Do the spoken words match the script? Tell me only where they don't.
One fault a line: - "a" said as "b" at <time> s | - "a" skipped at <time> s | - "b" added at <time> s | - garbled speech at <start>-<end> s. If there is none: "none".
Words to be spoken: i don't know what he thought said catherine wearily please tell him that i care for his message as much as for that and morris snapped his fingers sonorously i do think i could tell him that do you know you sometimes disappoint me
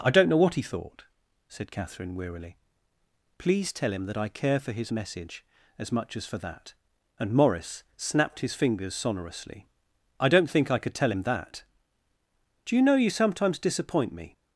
- "do" said as "don't" at 10.3 s